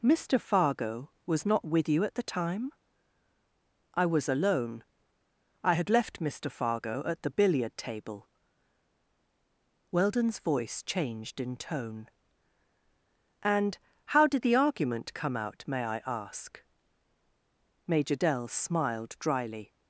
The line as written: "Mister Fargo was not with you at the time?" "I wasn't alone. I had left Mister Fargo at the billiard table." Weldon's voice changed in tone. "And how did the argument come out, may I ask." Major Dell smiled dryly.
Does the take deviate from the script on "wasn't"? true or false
true